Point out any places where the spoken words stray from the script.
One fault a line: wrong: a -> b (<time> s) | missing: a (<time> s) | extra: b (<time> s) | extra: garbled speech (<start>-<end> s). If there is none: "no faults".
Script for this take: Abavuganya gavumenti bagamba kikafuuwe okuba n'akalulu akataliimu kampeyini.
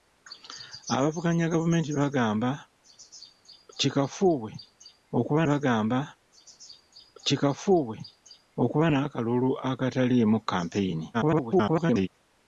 extra: bagamba kikafuuwe okuba (5.5 s)
extra: garbled speech (11.1-12.1 s)